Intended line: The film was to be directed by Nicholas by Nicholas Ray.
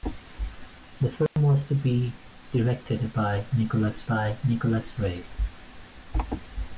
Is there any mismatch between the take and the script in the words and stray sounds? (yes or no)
yes